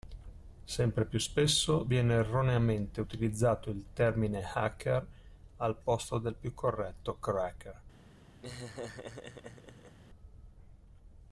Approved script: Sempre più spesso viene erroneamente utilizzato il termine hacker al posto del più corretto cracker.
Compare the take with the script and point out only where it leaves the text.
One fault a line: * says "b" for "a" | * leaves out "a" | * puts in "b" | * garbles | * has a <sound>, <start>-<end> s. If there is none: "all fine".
* has a laugh, 8.4-10.0 s